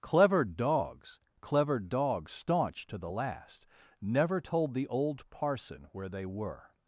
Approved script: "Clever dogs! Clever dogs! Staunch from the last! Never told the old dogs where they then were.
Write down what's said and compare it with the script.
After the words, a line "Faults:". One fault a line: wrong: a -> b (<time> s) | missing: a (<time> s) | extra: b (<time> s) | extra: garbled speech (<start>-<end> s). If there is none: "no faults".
"Clever dogs! Clever dogs! Staunch to the last! Never told the old parson where they were.
Faults:
wrong: from -> to (2.9 s)
wrong: dogs -> parson (5.3 s)
missing: then (6.3 s)